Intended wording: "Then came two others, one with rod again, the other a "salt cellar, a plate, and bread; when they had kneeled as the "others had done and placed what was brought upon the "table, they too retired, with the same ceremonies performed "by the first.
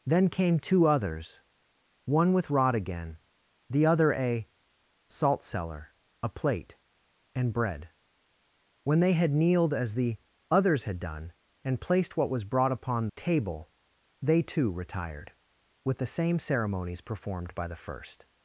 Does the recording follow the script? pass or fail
fail